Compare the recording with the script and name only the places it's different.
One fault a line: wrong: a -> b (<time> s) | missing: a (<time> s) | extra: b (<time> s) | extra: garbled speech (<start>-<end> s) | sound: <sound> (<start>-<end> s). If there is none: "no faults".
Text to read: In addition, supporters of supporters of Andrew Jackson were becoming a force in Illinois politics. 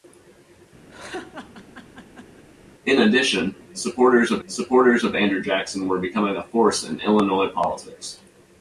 sound: laugh (0.9-2.4 s)